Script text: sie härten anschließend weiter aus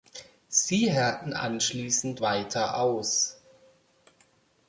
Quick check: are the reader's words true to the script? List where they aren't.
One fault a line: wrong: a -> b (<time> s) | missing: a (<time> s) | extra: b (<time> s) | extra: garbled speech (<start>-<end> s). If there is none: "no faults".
no faults